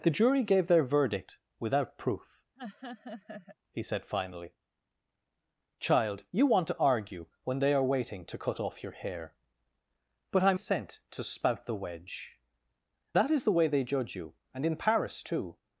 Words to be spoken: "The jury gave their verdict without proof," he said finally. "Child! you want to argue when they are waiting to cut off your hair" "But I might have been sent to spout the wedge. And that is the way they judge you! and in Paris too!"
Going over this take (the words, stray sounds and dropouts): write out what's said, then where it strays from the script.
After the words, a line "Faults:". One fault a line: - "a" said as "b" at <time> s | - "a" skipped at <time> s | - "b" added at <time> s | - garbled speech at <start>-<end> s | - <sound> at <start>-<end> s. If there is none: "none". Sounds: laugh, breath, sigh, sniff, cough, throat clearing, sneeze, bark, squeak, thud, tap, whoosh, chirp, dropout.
"The jury gave their verdict without proof," he said finally. "Child! you want to argue when they are waiting to cut off your hair" "But I sent to spout the wedge. That is the way they judge you! and in Paris too!"
Faults:
- laugh at 2.6-3.6 s
- "might have been" skipped at 10.5 s
- "And" skipped at 12.4 s